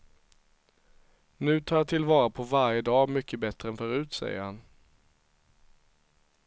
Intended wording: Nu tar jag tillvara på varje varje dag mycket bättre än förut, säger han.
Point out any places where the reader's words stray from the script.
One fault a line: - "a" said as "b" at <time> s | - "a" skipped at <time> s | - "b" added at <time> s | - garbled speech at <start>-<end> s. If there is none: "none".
- "varje" skipped at 2.8 s